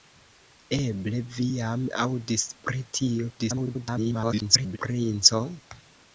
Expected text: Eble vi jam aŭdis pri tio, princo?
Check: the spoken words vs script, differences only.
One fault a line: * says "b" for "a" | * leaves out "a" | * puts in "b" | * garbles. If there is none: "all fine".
* garbles